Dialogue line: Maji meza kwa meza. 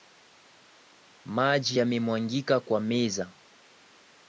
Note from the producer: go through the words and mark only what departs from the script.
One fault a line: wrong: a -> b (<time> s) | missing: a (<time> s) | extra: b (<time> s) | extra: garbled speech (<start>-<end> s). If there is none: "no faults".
wrong: meza -> yamemwagika (1.8 s)